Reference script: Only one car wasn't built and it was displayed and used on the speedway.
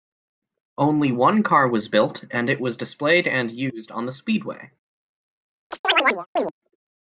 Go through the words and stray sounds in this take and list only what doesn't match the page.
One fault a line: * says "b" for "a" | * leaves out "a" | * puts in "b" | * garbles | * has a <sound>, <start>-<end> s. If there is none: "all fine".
* says "was" for "wasn't"
* has a chirp, 5.7-6.5 s